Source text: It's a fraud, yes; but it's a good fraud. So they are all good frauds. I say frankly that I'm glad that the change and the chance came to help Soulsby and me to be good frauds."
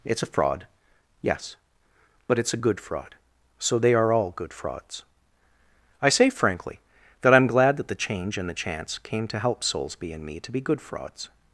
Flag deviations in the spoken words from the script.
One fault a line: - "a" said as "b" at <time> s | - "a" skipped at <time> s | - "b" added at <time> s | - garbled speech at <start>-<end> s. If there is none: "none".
none